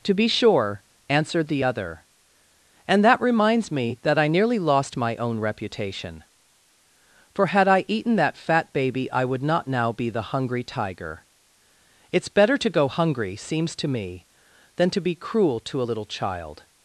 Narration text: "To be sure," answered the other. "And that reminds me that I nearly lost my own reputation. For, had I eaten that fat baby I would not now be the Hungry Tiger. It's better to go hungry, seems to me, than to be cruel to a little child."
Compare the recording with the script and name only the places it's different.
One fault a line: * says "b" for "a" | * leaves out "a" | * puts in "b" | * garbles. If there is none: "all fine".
all fine